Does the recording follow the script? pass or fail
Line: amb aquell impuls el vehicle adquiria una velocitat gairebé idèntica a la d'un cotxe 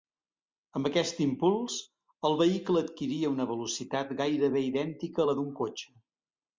fail